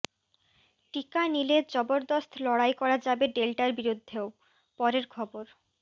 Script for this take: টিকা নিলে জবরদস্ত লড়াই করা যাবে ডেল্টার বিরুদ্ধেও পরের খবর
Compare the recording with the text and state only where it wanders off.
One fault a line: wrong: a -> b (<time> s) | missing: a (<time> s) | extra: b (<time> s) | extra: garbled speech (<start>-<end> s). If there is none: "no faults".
no faults